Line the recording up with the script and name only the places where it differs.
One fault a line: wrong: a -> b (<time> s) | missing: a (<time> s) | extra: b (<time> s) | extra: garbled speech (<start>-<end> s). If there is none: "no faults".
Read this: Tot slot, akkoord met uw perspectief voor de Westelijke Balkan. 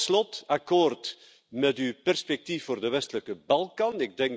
no faults